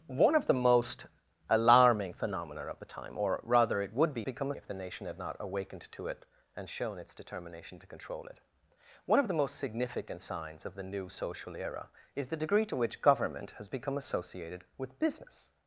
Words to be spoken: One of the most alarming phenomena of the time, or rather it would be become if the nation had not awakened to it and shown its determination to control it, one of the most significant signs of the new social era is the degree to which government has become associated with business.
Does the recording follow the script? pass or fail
pass